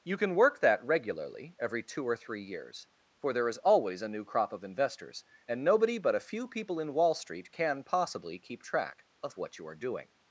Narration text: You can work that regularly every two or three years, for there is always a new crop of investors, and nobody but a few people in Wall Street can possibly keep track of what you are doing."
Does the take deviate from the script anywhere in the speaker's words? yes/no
no